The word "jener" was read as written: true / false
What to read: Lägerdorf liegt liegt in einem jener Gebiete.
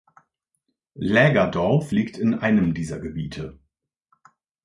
false